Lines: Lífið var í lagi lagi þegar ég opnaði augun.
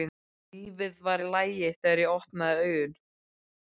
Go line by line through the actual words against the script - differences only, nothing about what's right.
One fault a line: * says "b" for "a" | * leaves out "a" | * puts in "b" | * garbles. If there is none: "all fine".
* leaves out "lagi"